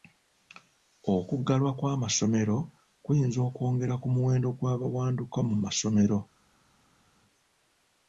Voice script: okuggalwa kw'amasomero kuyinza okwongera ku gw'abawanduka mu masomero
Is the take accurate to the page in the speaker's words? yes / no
no